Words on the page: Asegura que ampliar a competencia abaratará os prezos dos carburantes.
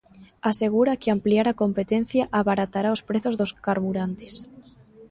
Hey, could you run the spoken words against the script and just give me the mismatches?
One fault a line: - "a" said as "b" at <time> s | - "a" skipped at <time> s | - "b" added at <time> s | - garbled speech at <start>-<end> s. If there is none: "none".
none